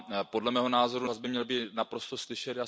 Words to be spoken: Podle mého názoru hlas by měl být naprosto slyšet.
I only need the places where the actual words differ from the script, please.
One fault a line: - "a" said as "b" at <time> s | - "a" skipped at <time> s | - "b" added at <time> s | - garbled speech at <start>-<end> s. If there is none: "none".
none